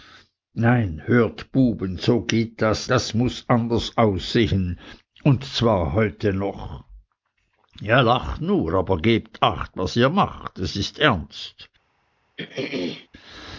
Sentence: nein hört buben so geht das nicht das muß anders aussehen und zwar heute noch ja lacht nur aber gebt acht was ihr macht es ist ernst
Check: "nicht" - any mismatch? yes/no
yes